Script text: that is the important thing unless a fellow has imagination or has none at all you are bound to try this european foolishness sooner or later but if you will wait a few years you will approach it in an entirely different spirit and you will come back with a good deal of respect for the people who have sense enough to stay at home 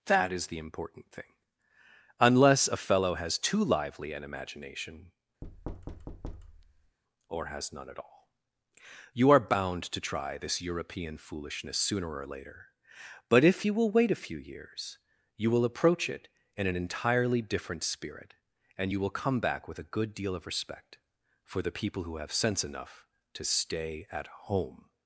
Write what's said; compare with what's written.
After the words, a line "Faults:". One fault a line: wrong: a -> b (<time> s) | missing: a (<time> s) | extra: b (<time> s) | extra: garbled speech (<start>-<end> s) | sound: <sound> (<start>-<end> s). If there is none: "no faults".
that is the important thing unless a fellow has too lively an imagination or has none at all you are bound to try this european foolishness sooner or later but if you will wait a few years you will approach it in an entirely different spirit and you will come back with a good deal of respect for the people who have sense enough to stay at home
Faults:
extra: too lively an (3.4 s)
sound: thud (5.4-7.0 s)